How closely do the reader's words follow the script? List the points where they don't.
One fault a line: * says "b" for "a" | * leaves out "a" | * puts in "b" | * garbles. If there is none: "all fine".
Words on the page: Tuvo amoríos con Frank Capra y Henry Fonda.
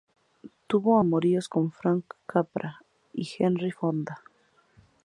all fine